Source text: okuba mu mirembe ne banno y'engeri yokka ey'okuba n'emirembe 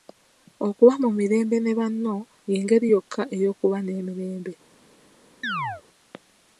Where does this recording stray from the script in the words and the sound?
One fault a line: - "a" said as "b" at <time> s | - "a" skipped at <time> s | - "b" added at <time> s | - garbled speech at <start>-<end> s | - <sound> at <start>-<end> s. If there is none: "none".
- chirp at 5.4-5.8 s